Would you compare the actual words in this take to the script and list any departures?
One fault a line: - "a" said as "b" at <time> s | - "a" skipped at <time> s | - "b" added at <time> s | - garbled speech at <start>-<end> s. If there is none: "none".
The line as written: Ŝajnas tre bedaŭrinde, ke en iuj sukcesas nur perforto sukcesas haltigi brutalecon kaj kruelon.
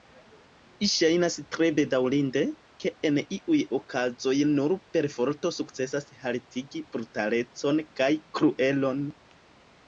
- "sukcesas" said as "okazoj" at 3.8 s